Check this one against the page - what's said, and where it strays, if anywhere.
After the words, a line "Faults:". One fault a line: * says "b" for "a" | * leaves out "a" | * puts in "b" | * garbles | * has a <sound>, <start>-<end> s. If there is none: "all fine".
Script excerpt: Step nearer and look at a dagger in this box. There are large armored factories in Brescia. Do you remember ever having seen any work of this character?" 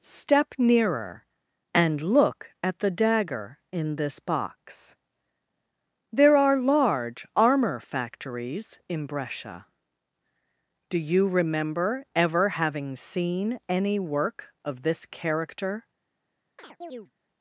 Step nearer and look at the dagger in this box. There are large armor factories in Brescia. Do you remember ever having seen any work of this character?"
Faults:
* says "the" for "a"
* says "armor" for "armored"
* has a chirp, 16.6-17.1 s